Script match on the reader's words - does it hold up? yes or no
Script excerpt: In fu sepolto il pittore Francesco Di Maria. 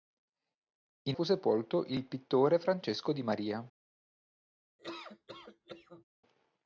yes